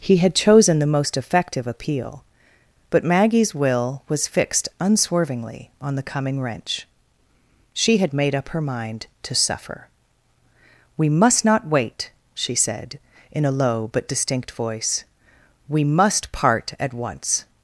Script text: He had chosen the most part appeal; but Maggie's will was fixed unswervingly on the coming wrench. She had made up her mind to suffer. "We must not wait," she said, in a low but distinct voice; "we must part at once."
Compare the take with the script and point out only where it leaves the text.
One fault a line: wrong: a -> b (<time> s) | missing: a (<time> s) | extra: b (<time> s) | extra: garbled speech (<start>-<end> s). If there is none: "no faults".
wrong: part -> effective (1.1 s)